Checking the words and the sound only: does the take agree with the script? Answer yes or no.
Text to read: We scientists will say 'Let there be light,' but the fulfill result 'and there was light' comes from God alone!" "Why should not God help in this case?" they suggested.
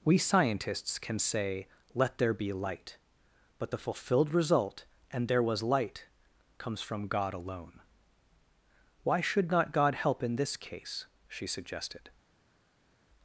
no